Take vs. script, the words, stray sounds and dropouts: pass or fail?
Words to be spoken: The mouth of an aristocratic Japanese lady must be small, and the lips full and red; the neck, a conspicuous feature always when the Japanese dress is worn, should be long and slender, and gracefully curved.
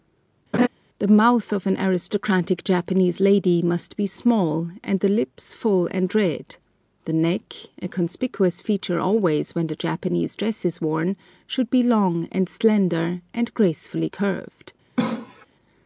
fail